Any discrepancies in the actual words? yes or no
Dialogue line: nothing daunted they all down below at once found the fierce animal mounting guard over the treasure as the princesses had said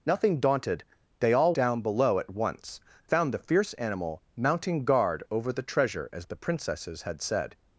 no